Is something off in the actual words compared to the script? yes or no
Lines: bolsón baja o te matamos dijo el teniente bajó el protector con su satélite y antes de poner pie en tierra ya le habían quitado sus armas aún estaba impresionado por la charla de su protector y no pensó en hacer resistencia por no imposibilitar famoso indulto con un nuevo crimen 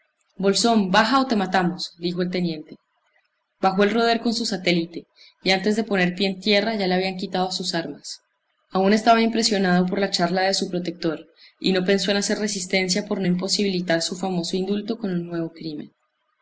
yes